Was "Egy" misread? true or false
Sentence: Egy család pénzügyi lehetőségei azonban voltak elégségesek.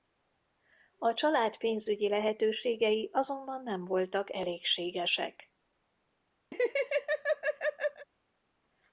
true